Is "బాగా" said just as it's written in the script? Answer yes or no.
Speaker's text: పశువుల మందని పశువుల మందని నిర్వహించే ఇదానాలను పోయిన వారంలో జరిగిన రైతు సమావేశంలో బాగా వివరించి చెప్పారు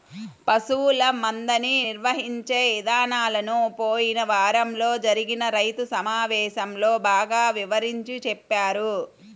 yes